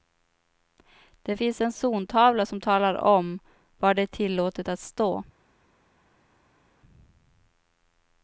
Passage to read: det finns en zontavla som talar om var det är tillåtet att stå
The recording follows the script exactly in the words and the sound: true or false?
true